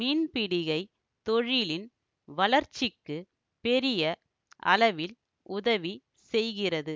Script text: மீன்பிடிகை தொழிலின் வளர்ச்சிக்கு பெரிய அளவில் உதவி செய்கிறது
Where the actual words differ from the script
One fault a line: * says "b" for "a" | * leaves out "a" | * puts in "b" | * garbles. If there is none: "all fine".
all fine